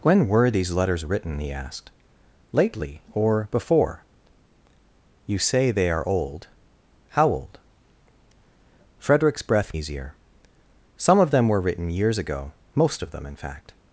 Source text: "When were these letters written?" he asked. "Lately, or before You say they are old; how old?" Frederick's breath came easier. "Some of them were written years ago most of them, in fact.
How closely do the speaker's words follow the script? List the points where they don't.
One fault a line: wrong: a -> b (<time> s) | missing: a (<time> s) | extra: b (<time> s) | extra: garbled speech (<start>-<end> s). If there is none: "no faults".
missing: came (9.7 s)